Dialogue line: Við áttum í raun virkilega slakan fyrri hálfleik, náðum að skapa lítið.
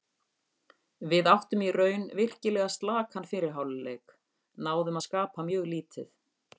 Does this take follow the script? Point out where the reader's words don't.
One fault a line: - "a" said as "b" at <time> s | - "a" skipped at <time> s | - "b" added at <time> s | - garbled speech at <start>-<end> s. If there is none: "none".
- "mjög" added at 5.5 s